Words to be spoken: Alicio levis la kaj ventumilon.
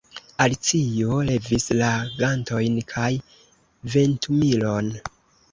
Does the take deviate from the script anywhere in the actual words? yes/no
yes